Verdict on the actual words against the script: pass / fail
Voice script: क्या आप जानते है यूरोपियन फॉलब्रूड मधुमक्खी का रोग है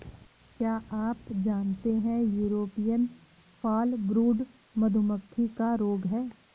pass